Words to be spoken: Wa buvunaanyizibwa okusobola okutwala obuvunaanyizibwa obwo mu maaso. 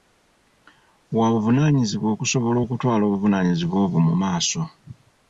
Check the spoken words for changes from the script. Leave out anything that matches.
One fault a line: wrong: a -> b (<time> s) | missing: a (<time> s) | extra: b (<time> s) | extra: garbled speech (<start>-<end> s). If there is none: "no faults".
no faults